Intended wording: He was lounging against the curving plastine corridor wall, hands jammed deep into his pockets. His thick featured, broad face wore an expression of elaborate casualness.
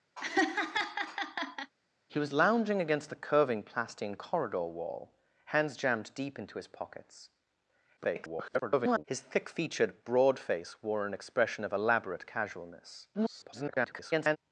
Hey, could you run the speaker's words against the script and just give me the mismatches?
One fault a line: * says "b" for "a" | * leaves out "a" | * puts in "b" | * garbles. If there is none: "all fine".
* garbles
* garbles